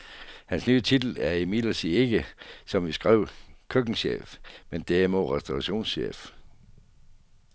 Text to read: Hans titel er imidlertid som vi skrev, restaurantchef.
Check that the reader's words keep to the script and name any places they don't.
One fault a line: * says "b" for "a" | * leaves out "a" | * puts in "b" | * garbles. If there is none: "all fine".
* puts in "nye"
* puts in "ikke"
* puts in "køkkenchef men derimod"